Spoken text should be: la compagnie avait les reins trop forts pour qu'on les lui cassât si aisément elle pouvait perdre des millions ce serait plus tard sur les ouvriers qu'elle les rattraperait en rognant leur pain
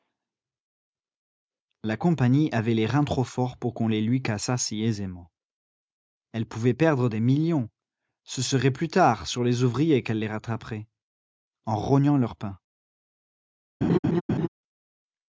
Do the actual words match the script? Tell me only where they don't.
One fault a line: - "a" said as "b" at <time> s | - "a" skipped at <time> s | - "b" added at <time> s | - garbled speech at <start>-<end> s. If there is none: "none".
none